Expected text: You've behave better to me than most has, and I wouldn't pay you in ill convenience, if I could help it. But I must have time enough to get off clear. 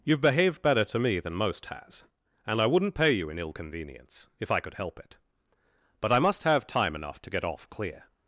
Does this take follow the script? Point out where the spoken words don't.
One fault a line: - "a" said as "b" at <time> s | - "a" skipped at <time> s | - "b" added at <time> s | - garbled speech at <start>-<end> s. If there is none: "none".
- "behave" said as "behaved" at 0.2 s